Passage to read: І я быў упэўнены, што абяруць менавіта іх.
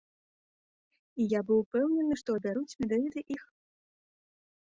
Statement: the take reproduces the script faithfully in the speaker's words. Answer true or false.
true